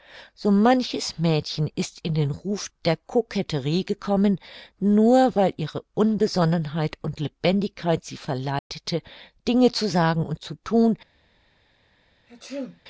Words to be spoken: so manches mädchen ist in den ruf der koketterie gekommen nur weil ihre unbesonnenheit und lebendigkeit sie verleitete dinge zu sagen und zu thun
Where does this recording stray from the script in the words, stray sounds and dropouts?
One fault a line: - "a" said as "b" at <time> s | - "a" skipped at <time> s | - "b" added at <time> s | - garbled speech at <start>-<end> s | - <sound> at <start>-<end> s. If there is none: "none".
- dropout at 8.6-8.7 s
- sneeze at 12.3-12.8 s